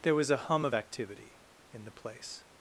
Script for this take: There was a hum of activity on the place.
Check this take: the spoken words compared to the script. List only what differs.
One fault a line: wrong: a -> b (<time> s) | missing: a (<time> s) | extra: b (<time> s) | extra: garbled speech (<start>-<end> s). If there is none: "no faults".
wrong: on -> in (1.7 s)